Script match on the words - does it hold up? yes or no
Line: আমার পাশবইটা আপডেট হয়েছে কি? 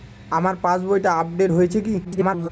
no